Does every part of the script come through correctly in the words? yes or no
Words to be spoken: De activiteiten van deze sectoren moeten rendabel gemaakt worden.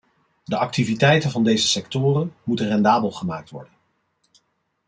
yes